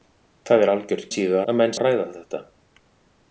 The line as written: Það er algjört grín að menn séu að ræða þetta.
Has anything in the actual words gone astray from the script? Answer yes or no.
yes